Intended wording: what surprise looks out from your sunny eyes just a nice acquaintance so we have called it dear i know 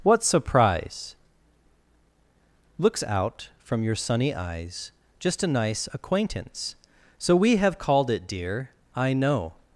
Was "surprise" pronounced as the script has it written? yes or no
yes